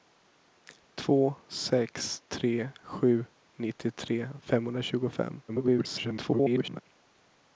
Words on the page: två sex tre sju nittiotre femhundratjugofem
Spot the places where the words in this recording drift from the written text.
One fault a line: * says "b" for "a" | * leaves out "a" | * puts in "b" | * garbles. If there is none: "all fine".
* garbles